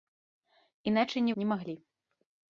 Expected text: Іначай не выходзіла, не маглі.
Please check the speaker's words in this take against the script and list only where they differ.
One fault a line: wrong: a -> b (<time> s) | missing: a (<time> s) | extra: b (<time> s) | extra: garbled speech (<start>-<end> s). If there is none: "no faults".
missing: выходзіла (1.3 s)